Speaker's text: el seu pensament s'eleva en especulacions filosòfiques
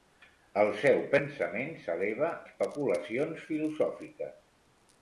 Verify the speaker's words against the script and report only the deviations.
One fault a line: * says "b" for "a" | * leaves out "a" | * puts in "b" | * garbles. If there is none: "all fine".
* leaves out "en"